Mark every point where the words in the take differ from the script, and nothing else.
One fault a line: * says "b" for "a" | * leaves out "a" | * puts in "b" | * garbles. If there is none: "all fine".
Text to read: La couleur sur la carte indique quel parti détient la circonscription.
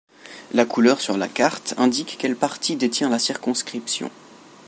all fine